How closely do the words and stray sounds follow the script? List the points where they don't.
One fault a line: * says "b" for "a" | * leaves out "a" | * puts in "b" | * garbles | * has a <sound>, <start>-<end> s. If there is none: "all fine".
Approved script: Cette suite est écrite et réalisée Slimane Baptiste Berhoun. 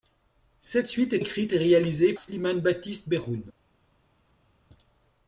all fine